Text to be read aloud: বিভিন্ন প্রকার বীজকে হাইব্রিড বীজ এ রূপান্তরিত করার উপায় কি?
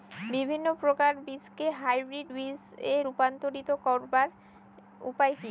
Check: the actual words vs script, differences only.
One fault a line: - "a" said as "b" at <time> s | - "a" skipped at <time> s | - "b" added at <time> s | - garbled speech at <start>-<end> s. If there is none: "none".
none